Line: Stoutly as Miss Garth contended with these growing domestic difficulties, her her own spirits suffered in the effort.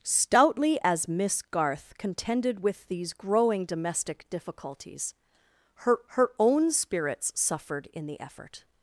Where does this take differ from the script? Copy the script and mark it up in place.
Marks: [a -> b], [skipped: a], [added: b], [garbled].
Stoutly as Miss Garth contended with these growing domestic difficulties, her her own spirits suffered in the effort.